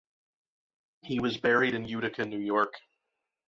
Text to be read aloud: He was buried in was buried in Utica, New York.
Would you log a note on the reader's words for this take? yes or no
yes